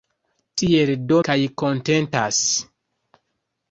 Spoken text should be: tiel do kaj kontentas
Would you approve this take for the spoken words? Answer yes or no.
yes